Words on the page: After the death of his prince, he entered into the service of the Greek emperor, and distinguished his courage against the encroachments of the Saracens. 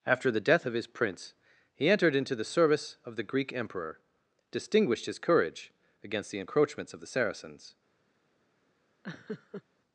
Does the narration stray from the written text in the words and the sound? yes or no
yes